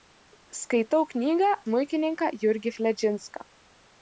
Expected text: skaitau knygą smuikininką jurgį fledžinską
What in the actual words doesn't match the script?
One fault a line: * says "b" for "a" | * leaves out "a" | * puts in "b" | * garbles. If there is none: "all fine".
all fine